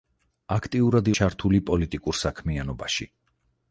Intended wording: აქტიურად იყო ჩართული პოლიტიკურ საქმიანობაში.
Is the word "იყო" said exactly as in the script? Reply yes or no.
no